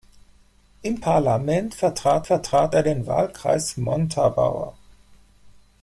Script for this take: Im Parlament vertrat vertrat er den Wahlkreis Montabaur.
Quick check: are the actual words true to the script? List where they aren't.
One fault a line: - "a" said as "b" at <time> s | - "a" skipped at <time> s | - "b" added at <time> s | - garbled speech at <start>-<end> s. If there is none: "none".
none